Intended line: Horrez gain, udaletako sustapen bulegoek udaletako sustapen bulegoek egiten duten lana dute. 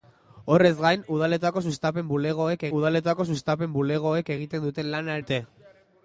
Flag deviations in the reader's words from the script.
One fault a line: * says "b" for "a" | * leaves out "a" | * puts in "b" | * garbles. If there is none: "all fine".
all fine